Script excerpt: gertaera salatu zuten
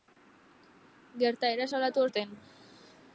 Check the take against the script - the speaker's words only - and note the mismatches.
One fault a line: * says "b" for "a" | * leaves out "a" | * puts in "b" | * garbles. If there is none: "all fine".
all fine